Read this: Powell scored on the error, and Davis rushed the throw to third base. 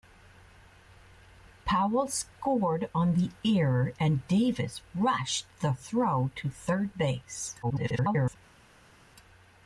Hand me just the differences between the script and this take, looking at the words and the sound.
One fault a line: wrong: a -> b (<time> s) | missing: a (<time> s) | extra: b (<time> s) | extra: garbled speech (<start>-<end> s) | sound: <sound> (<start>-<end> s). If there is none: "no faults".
extra: garbled speech (7.6-8.4 s)